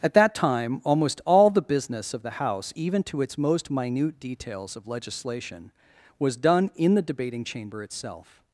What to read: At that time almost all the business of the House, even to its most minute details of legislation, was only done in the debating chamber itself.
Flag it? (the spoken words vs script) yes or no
yes